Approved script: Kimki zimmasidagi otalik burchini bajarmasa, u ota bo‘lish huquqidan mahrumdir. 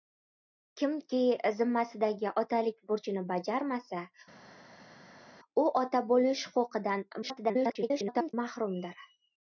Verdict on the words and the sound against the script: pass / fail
fail